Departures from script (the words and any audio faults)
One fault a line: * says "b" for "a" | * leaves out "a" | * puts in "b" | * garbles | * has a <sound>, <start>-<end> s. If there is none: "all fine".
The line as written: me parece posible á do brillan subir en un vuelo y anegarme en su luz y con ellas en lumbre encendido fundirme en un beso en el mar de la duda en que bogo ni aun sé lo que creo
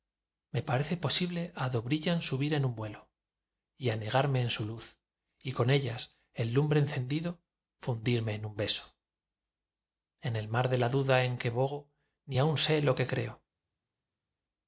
all fine